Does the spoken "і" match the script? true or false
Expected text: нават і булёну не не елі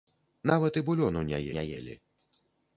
true